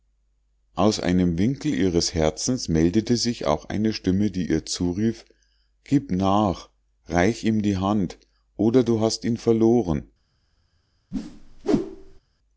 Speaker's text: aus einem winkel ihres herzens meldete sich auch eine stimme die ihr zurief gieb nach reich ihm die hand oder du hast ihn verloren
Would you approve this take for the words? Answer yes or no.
yes